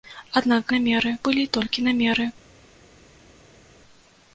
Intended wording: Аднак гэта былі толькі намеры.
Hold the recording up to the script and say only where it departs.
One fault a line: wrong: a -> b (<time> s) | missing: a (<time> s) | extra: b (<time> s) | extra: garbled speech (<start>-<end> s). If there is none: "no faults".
wrong: гэта -> намеры (0.7 s)